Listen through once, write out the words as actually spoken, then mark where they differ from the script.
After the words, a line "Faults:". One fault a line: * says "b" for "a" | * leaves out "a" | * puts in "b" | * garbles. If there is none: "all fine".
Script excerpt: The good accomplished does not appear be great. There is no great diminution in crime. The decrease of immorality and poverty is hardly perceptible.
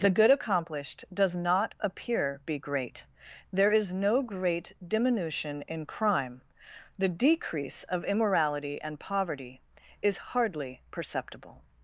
The good accomplished does not appear be great. There is no great diminution in crime. The decrease of immorality and poverty is hardly perceptible.
Faults:
all fine